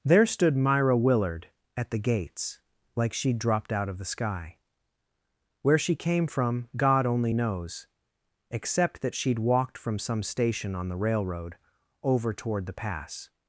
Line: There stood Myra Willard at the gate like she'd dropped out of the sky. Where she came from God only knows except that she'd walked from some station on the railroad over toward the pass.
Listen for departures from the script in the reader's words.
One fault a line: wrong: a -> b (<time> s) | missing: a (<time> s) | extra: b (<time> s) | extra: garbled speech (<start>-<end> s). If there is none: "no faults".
wrong: gate -> gates (2.0 s)